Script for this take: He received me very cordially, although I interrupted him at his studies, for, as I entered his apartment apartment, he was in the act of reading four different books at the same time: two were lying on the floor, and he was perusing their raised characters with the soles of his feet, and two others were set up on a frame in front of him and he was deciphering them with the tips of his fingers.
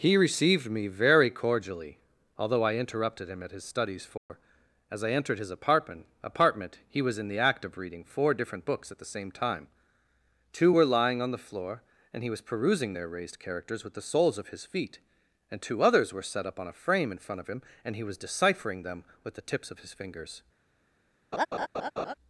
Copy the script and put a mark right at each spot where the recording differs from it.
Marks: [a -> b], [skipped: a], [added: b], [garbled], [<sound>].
He received me very cordially, although I interrupted him at his studies, for, [dropout] as I entered his apartment apartment, he was in the act of reading four different books at the same time: two were lying on the floor, and he was perusing their raised characters with the soles of his feet, and two others were set up on a frame in front of him and he was deciphering them with the tips of his fingers. [laugh]